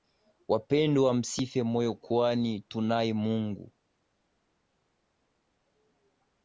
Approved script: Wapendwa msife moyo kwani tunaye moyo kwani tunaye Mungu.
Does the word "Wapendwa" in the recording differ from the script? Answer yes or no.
no